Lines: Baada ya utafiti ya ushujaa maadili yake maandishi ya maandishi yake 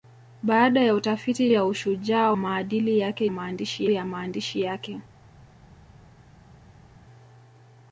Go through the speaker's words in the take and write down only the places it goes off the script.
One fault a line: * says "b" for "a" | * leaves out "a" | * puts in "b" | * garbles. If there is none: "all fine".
all fine